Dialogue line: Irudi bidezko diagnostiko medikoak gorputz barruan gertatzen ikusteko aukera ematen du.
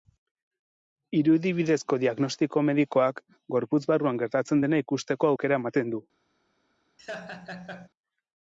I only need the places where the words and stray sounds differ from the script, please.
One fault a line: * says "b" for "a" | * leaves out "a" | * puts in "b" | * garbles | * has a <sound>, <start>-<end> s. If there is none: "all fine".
* puts in "dena"
* has a laugh, 7.0-7.9 s